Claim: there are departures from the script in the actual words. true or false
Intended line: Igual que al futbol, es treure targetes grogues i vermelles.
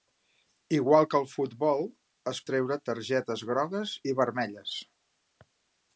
false